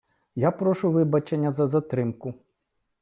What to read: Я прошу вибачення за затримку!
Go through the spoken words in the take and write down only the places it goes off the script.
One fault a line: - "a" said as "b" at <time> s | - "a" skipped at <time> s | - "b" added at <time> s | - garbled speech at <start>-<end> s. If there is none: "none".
none